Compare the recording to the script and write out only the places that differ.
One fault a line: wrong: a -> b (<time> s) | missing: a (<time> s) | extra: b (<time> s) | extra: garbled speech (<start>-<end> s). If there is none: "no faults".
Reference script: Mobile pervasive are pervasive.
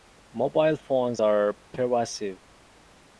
wrong: pervasive -> phones (0.8 s)